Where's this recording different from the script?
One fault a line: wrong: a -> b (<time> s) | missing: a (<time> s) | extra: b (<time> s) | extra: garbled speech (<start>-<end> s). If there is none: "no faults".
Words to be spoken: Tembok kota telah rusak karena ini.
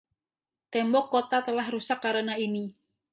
no faults